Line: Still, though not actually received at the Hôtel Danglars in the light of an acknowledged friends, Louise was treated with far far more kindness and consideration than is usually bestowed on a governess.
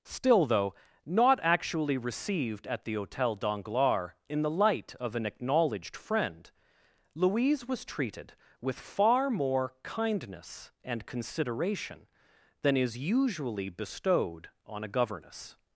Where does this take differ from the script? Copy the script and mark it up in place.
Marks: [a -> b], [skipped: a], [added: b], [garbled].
Still, though not actually received at the Hôtel Danglars in the light of an acknowledged [friends, -> friend] Louise was treated with far [skipped: far] more kindness and consideration than is usually bestowed on a governess.